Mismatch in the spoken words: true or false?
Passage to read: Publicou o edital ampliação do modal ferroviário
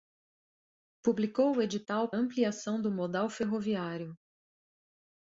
false